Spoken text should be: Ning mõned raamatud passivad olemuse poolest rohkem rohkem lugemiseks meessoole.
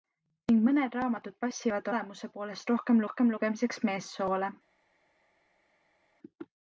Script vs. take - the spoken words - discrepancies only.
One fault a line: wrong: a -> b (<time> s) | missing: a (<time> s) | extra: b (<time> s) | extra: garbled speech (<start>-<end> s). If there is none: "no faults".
no faults